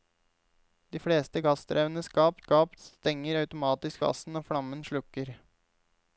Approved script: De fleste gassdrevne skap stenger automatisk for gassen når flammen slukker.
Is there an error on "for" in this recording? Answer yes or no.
yes